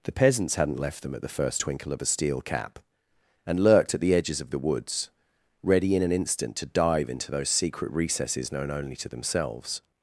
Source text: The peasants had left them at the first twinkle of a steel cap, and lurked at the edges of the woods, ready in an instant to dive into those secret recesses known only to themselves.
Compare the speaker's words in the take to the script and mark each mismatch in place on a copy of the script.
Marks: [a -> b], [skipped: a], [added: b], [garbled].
The peasants [had -> hadn't] left them at the first twinkle of a steel cap, and lurked at the edges of the woods, ready in an instant to dive into those secret recesses known only to themselves.